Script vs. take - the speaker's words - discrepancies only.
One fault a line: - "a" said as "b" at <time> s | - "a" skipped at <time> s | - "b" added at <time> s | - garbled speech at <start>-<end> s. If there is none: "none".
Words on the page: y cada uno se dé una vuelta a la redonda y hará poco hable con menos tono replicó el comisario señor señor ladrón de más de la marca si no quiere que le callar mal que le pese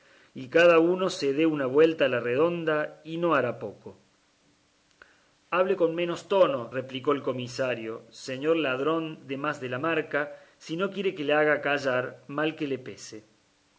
- "no" added at 3.2 s
- "señor" skipped at 8.6 s
- "haga" added at 11.3 s